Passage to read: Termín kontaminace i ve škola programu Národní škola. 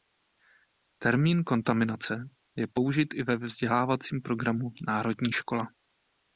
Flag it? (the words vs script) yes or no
yes